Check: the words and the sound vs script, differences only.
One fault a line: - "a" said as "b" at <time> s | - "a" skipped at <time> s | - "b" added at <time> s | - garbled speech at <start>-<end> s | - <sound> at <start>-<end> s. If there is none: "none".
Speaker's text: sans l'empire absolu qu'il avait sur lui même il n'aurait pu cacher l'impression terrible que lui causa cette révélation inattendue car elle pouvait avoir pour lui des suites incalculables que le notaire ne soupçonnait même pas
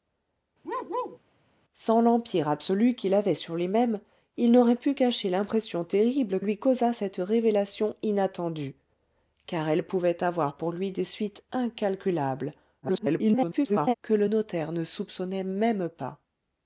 - bark at 0.6-1.2 s
- "que" skipped at 6.4 s
- garbled speech at 12.8-13.9 s